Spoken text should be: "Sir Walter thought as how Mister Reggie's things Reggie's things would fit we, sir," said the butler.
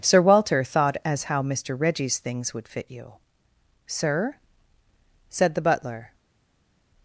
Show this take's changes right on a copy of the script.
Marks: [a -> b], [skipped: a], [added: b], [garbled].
"Sir Walter thought as how Mister Reggie's things [skipped: Reggie's things] would fit [we, -> you] sir," said the butler.